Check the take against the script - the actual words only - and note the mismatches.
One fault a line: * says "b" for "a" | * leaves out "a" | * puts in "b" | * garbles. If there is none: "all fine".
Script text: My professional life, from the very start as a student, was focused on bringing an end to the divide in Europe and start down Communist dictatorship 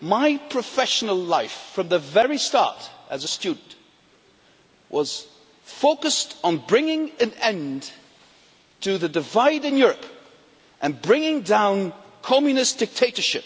* says "bringing" for "start"